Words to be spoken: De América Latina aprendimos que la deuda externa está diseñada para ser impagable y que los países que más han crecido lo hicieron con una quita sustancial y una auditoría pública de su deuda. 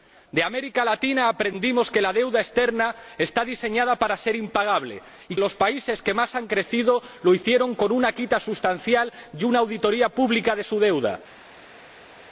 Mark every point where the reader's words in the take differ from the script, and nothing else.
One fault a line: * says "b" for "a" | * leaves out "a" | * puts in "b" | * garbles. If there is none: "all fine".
* leaves out "que"